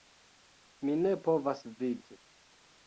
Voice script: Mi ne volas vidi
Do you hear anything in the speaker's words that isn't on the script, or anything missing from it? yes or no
yes